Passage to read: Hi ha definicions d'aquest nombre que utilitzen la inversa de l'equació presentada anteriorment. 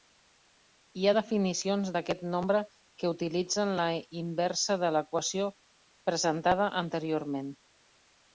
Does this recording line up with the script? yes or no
yes